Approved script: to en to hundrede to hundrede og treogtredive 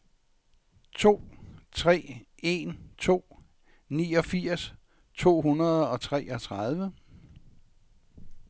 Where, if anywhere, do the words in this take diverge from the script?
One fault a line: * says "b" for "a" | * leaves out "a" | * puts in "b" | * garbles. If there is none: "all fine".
* puts in "tre"
* says "niogfirs" for "hundrede"